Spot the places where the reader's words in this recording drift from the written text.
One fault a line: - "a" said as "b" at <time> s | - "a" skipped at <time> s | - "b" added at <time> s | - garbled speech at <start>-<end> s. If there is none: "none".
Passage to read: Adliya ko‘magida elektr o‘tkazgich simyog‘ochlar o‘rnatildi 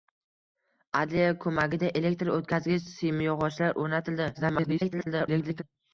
- garbled speech at 4.3-5.6 s